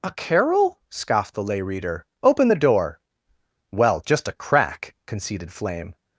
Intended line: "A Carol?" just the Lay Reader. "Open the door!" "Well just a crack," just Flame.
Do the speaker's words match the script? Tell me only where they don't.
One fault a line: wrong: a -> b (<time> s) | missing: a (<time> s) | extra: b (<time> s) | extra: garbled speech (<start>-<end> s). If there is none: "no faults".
wrong: just -> scoffed (0.9 s)
wrong: just -> conceded (5.1 s)